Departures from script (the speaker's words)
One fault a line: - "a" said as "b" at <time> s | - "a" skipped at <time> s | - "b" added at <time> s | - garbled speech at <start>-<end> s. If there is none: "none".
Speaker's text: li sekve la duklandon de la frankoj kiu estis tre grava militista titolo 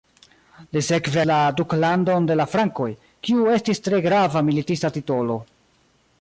none